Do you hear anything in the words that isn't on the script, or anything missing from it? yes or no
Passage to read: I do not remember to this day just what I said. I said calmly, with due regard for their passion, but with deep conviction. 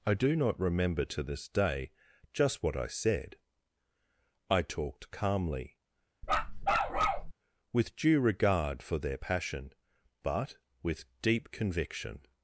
yes